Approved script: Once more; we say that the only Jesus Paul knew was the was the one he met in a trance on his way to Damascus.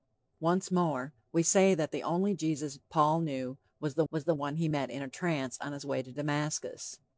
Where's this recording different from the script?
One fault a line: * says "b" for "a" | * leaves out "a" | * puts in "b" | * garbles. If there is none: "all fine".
all fine